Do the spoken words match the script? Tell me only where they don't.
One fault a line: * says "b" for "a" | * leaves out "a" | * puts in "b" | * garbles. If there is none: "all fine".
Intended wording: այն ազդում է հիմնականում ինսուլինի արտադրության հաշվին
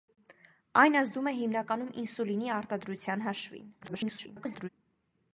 * garbles